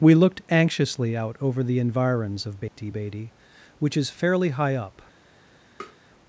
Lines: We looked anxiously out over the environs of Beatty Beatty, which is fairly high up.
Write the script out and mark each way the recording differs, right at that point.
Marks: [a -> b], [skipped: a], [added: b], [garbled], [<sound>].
We looked anxiously out over the environs of Beatty [dropout] Beatty, which is fairly high up. [tap]